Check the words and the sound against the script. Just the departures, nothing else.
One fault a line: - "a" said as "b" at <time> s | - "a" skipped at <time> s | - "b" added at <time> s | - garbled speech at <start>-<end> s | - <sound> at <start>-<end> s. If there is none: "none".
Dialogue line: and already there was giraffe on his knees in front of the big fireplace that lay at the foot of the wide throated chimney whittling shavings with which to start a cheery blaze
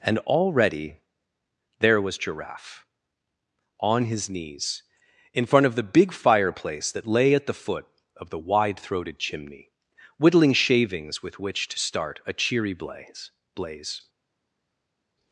- "blaze" added at 13.5 s